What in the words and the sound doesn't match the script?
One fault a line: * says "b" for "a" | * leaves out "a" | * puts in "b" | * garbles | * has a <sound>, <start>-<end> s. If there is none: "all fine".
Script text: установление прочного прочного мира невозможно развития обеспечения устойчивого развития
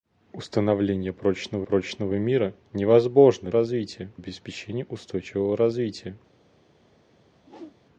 * has a whoosh, 7.4-7.8 s